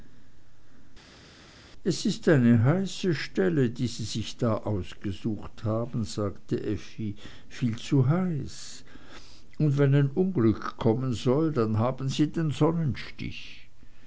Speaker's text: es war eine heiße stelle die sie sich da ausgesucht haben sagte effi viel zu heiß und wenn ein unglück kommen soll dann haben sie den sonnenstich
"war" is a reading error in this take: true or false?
true